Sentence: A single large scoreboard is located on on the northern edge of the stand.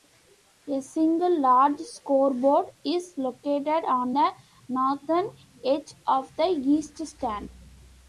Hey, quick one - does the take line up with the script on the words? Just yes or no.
no